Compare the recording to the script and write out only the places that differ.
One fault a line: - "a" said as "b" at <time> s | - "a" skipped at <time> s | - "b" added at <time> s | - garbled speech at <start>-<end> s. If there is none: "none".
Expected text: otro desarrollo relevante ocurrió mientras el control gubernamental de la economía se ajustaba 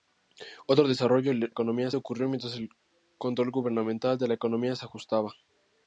- "relevante" said as "economía" at 1.5 s